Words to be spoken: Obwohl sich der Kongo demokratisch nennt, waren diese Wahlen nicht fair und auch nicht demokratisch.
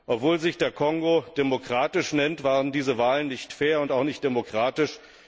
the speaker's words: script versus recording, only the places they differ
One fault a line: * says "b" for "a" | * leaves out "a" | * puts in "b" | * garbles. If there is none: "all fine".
all fine